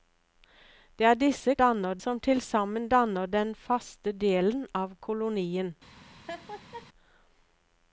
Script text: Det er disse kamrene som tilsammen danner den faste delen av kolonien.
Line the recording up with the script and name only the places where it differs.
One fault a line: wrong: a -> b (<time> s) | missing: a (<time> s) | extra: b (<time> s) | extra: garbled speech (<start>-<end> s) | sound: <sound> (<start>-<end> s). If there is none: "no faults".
wrong: kamrene -> danner (1.6 s)
sound: laugh (6.3-6.9 s)